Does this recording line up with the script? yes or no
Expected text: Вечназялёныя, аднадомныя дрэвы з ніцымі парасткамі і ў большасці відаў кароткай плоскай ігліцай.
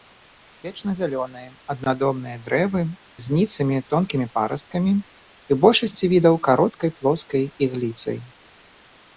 no